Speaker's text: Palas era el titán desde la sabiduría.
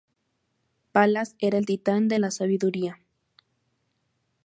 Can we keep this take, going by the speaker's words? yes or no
no